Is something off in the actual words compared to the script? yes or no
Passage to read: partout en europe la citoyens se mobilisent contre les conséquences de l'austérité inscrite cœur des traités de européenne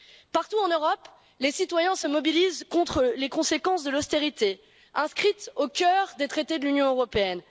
yes